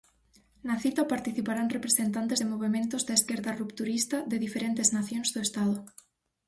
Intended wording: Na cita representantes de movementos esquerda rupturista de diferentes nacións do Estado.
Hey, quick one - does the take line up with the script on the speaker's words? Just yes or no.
no